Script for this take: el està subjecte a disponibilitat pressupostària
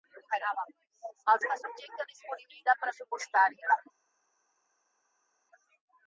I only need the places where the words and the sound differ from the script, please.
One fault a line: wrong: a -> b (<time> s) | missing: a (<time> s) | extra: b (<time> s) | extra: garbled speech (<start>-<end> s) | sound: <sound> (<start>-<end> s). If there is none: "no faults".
no faults